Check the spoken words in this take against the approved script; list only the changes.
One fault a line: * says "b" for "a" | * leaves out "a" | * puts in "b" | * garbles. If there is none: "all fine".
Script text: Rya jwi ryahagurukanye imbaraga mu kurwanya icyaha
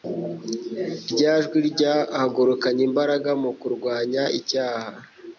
all fine